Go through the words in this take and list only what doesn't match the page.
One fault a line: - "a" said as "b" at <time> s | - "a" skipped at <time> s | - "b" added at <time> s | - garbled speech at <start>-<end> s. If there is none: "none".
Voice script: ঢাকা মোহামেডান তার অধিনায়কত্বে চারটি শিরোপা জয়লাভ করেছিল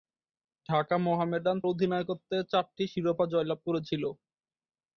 - "তার" skipped at 1.6 s